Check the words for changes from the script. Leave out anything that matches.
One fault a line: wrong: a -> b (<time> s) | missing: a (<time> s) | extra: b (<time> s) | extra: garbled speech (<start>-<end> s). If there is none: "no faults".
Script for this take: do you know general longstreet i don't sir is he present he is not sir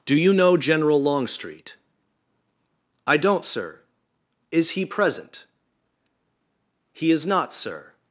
no faults